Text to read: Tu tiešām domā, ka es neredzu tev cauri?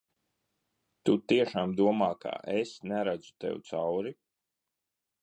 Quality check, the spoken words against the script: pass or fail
pass